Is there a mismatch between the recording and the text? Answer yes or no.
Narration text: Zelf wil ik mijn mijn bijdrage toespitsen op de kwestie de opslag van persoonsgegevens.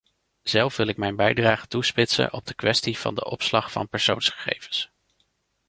yes